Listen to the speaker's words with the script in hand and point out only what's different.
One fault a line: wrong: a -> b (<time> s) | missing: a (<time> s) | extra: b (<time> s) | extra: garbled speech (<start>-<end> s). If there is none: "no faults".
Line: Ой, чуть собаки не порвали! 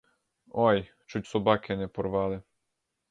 no faults